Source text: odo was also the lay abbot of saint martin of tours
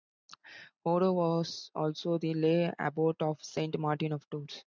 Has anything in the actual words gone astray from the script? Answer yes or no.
no